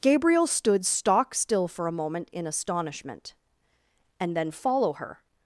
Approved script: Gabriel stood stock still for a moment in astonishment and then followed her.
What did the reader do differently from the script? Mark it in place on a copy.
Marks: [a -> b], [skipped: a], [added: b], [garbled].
Gabriel stood stock still for a moment in astonishment and then [followed -> follow] her.